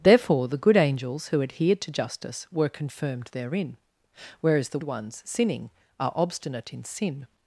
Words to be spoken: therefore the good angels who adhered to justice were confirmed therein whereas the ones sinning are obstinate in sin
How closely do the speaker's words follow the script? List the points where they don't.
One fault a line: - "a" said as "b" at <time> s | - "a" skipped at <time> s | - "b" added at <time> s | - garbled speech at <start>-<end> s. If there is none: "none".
none